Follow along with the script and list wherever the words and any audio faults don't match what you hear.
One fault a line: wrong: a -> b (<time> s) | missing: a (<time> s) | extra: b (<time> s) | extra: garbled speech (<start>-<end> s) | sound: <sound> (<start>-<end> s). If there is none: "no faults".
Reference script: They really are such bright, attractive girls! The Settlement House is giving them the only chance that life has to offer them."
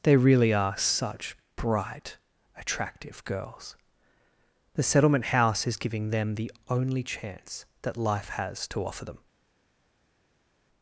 no faults